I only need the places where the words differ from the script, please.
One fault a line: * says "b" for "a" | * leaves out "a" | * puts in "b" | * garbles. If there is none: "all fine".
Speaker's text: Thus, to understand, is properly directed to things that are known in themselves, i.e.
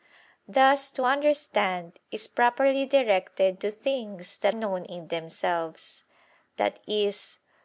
* leaves out "are"